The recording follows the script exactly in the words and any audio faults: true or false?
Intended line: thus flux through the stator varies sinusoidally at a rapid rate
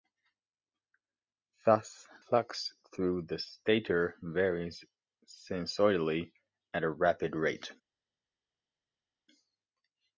true